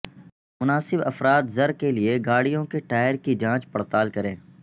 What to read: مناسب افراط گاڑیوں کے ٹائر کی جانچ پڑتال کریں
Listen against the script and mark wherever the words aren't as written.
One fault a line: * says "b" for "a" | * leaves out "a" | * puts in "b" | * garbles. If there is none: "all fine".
* puts in "زر کے لئے"